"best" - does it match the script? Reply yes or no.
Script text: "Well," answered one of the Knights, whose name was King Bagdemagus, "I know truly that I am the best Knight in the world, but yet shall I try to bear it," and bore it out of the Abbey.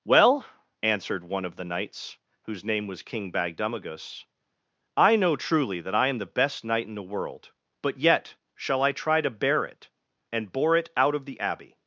yes